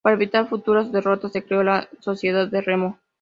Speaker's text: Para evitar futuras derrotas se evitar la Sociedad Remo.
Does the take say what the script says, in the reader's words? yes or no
no